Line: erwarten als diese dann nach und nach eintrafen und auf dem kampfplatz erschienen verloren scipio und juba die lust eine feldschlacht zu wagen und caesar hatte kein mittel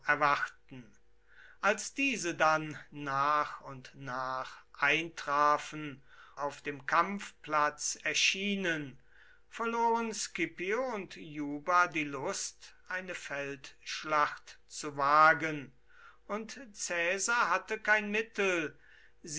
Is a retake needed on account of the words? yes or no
yes